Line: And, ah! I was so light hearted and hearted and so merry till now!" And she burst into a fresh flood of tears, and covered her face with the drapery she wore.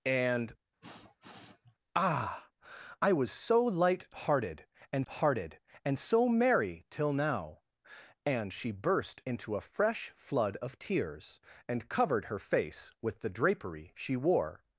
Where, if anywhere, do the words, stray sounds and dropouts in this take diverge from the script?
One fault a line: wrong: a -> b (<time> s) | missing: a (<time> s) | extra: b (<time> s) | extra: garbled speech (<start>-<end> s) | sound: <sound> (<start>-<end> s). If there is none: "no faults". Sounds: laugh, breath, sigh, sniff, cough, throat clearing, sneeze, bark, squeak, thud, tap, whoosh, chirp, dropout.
sound: sniff (0.8-1.8 s)